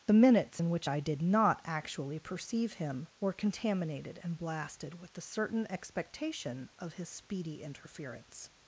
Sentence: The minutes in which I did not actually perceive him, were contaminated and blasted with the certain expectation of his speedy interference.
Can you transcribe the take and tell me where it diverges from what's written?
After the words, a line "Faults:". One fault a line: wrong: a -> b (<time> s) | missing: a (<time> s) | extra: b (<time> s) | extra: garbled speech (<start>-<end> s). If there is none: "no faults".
The minutes in which I did not actually perceive him, were contaminated and blasted with the certain expectation of his speedy interference.
Faults:
no faults